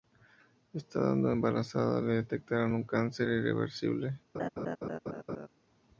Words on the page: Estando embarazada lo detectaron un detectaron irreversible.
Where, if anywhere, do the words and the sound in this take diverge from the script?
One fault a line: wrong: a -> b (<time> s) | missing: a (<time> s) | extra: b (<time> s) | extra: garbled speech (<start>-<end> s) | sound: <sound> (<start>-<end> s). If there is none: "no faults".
wrong: lo -> le (2.0 s)
wrong: detectaron -> cáncer (2.8 s)
sound: laugh (4.3-5.5 s)